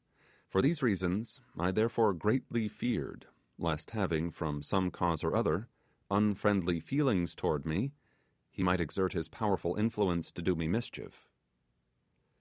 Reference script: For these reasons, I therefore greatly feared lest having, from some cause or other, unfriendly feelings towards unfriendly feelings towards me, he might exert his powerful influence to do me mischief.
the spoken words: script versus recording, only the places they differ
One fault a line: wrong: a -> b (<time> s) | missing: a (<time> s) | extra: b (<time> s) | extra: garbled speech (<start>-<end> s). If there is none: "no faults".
missing: unfriendly feelings towards (7.6 s)